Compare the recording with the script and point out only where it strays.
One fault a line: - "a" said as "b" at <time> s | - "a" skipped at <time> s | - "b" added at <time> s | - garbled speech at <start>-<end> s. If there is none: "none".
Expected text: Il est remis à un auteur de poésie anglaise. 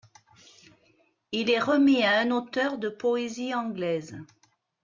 none